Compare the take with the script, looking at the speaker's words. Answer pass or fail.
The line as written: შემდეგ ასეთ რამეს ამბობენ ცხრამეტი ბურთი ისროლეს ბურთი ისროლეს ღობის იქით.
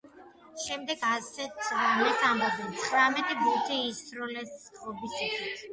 fail